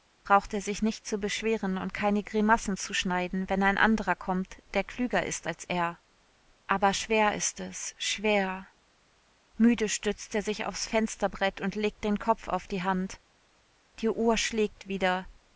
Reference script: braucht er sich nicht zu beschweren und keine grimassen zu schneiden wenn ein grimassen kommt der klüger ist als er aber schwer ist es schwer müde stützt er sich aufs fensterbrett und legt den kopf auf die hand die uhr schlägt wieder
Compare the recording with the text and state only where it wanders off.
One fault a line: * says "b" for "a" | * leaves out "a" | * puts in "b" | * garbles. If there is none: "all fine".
* says "anderer" for "grimassen"